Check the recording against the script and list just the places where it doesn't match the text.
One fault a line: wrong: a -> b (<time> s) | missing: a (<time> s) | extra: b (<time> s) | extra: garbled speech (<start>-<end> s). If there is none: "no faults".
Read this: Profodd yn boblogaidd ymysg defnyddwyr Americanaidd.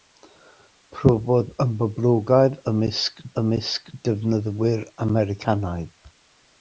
extra: ymysg (3.4 s)